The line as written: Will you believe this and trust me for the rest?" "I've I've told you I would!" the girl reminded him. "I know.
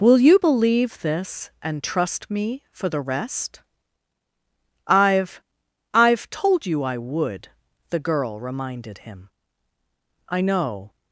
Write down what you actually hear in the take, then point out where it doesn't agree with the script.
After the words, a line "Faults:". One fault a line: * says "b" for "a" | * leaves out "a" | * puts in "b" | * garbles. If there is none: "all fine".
Will you believe this and trust me for the rest?" "I've I've told you I would!" the girl reminded him. "I know.
Faults:
all fine